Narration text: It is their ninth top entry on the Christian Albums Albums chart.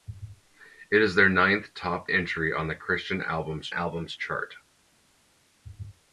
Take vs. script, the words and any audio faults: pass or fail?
pass